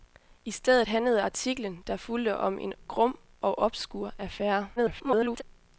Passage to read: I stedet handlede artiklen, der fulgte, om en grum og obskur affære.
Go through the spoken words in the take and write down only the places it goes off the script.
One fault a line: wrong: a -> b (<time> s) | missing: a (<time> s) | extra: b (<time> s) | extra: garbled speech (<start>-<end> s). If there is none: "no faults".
extra: garbled speech (4.8-5.4 s)